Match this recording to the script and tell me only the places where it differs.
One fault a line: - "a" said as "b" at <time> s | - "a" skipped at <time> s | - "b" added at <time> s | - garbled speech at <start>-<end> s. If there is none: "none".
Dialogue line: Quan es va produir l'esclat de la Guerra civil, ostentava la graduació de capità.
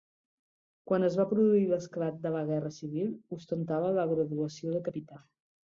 none